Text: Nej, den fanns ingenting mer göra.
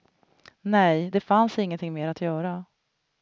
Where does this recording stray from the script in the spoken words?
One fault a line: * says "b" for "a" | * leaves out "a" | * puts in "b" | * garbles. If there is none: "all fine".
* says "det" for "den"
* puts in "att"